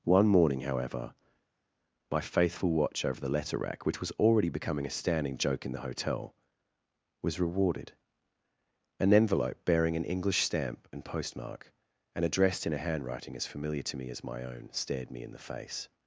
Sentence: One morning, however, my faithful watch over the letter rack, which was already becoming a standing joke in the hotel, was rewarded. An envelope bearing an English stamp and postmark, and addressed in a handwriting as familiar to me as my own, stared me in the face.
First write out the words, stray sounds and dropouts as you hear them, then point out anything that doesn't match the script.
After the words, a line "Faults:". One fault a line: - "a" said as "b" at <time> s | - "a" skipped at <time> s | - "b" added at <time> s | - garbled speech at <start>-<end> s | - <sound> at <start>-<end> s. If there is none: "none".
One morning, however, my faithful watch over the letter rack, which was already becoming a standing joke in the hotel, was rewarded. An envelope bearing an English stamp and postmark, and addressed in a handwriting as familiar to me as my own, stared me in the face.
Faults:
none